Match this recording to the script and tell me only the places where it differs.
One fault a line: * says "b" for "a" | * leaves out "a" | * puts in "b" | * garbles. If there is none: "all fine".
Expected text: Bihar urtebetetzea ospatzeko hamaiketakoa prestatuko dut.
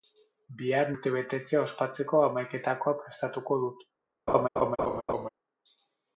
all fine